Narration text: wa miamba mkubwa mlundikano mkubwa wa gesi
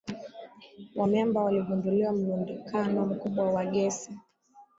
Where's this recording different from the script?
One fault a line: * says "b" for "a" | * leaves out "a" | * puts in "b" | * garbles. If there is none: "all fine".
* says "waligundua" for "mkubwa"